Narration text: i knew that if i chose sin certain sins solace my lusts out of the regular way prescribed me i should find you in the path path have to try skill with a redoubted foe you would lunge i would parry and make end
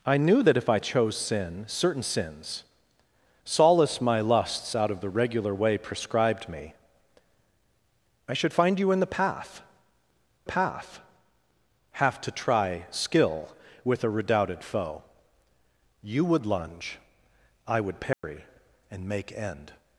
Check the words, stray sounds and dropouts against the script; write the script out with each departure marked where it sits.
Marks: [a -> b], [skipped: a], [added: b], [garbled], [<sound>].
i knew that if i chose sin certain sins solace my lusts out of the regular way prescribed me i should find you in the path path have to try skill with a redoubted foe you would lunge i would parry [dropout] and make end